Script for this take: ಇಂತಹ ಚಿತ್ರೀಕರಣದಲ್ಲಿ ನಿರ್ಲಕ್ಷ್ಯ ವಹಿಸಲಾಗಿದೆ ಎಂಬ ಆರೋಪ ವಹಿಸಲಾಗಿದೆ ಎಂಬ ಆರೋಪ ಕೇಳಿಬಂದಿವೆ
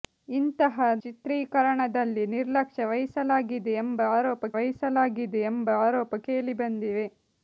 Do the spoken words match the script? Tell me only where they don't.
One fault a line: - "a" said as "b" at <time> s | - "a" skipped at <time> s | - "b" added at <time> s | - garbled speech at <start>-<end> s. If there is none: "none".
none